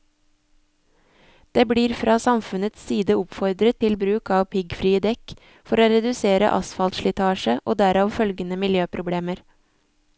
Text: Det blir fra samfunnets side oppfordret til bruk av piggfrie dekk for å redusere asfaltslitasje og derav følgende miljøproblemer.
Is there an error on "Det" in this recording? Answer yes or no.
no